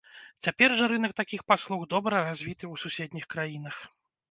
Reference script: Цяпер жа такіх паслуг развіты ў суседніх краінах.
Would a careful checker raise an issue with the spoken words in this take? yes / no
yes